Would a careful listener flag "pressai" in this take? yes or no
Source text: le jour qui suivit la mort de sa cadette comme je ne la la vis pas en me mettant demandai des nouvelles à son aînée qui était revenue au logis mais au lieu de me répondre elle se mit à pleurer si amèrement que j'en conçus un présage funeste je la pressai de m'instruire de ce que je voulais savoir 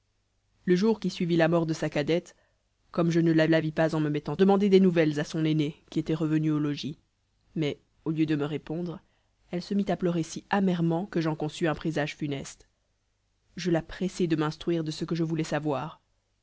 no